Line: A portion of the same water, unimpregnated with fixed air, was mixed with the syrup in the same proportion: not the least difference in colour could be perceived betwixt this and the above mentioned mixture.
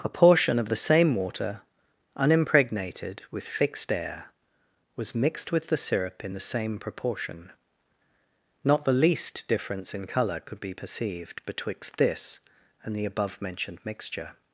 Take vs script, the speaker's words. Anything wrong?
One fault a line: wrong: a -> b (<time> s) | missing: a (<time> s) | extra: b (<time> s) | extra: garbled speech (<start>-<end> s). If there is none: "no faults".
no faults